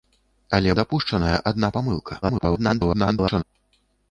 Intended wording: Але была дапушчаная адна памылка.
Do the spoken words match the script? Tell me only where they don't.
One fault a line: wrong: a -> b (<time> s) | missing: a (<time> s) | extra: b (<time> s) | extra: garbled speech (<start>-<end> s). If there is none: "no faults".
missing: была (0.7 s)
extra: garbled speech (2.2-3.4 s)